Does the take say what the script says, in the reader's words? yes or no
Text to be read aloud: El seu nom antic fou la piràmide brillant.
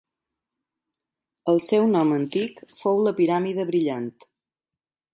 yes